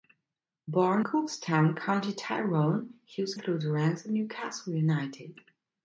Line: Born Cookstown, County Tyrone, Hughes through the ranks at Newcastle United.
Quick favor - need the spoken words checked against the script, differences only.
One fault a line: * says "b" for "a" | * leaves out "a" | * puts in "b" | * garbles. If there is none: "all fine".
all fine